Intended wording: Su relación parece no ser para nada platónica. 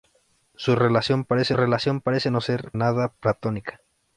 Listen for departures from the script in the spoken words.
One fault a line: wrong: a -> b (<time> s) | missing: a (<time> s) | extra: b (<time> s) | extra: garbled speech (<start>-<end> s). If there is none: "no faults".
extra: relación parece (1.5 s)
missing: para (2.7 s)